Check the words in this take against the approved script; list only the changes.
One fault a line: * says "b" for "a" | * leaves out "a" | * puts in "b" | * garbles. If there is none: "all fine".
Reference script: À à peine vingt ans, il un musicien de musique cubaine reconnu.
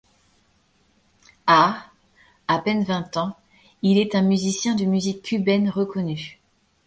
* puts in "est"